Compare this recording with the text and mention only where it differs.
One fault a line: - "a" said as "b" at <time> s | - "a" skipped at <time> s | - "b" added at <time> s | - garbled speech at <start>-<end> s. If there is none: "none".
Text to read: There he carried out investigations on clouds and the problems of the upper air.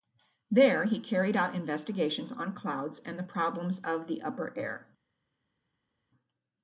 none